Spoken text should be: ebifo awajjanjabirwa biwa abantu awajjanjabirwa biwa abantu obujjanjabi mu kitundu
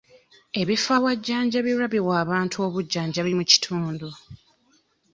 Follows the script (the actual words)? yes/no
no